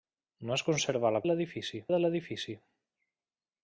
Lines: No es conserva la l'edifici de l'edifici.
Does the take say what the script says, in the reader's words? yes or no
yes